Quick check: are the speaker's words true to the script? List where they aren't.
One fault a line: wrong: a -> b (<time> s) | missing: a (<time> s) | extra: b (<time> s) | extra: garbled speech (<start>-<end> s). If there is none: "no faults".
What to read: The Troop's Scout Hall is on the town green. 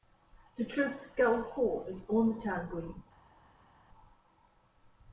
no faults